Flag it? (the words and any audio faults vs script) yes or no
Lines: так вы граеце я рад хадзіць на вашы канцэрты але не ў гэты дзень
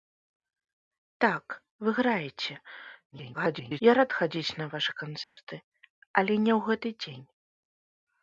yes